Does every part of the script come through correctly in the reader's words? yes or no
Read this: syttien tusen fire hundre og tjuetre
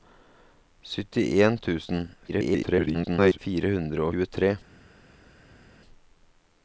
no